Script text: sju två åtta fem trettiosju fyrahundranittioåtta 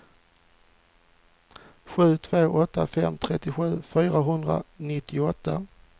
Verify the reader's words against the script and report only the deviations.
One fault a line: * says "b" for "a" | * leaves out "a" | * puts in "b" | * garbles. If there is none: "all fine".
all fine